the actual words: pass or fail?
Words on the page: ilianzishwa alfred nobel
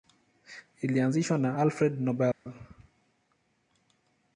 fail